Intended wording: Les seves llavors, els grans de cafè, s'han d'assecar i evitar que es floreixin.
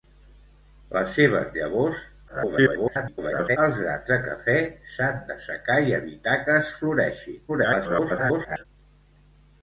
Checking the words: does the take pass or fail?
fail